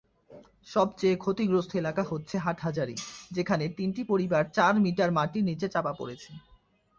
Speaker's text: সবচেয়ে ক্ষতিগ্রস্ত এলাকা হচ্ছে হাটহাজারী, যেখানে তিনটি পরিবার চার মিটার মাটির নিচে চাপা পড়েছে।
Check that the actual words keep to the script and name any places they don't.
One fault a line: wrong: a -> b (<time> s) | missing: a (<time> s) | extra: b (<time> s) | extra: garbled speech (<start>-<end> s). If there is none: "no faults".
no faults